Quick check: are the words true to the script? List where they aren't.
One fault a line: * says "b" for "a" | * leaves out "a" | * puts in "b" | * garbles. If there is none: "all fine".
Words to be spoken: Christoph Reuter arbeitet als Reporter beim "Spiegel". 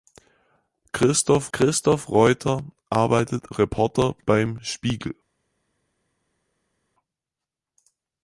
* puts in "christoph"
* leaves out "als"